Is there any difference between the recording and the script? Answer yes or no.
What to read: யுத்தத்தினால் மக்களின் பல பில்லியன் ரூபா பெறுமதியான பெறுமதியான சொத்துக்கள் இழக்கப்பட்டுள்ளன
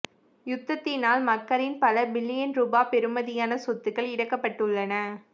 yes